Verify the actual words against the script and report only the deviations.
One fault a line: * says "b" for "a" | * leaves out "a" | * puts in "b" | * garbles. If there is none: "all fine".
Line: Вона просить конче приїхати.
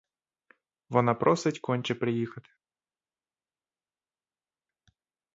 all fine